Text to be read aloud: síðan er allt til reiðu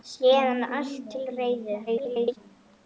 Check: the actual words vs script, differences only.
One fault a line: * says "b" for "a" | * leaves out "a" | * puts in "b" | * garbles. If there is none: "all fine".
* garbles